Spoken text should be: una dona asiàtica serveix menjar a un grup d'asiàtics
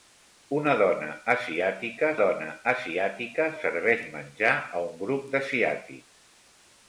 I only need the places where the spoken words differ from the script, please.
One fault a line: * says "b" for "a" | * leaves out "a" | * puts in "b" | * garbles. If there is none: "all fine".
* puts in "dona asiàtica"